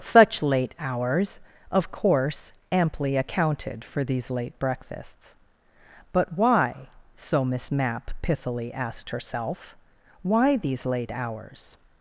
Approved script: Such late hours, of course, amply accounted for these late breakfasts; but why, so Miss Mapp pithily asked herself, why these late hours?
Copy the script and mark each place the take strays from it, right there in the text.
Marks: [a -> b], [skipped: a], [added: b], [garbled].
Such late hours, of course, amply accounted for these late breakfasts; but why, so Miss Mapp pithily asked herself, why these late hours?